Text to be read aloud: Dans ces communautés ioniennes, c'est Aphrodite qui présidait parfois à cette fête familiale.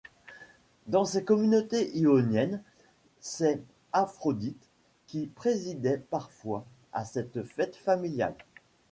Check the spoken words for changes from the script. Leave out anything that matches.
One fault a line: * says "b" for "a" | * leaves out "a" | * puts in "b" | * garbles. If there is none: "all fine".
all fine